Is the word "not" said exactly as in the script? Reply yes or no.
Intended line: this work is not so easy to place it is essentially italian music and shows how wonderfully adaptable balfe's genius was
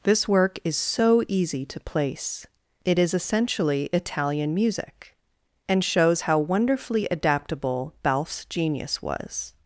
no